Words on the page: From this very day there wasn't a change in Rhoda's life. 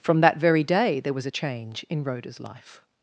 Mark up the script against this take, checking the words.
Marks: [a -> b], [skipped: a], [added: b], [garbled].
From [this -> that] very day there [wasn't -> was] a change in Rhoda's life.